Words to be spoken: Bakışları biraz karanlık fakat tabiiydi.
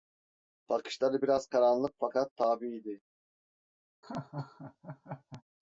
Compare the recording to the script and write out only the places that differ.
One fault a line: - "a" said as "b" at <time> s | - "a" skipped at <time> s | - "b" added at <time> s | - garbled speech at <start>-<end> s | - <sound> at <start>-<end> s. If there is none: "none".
- laugh at 4.0-5.4 s